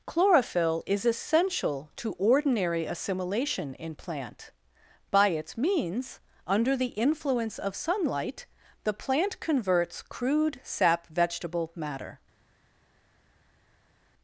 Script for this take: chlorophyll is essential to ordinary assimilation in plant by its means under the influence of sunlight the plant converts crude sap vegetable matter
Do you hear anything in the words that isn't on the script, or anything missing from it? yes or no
no